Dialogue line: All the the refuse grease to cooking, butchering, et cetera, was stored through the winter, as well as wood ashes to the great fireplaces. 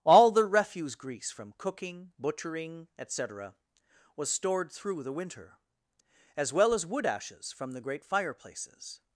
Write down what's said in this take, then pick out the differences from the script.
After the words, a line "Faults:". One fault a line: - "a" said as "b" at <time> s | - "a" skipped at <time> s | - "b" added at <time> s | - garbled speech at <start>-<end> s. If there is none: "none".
All the refuse grease from cooking, butchering, et cetera, was stored through the winter, as well as wood ashes from the great fireplaces.
Faults:
- "the" skipped at 0.5 s
- "to" said as "from" at 1.3 s
- "to" said as "from" at 7.5 s